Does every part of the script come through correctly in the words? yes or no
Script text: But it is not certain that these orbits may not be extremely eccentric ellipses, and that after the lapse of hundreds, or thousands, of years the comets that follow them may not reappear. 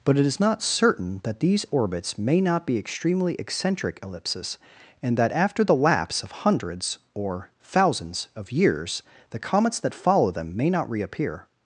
yes